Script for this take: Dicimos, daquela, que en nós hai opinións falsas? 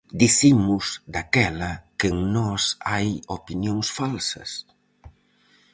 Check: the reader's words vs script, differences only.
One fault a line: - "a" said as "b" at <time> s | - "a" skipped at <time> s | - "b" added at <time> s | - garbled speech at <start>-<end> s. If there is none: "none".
none